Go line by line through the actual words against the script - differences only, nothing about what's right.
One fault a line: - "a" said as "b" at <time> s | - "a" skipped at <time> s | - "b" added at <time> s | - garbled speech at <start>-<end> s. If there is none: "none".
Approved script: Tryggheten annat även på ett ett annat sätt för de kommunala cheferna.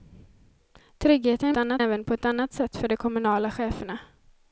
none